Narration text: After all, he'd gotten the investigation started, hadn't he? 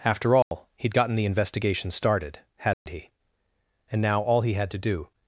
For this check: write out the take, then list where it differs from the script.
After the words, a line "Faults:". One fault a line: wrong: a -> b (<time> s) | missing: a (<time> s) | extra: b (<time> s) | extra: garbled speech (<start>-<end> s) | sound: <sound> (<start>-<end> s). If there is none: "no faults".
After all, he'd gotten the investigation started, hadn't he? And now all he had to do
Faults:
sound: dropout (0.4-0.5 s)
sound: dropout (2.7-2.9 s)
extra: And now all he had to do (3.9 s)